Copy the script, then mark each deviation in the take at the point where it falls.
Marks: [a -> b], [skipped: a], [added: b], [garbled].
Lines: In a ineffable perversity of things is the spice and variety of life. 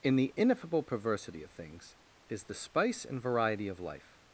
In [a -> the] ineffable perversity of things is the spice and variety of life.